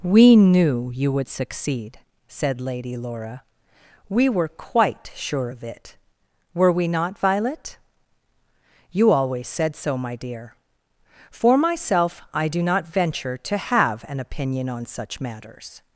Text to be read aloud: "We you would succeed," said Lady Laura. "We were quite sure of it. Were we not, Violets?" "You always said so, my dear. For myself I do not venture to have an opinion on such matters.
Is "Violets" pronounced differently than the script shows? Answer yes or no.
yes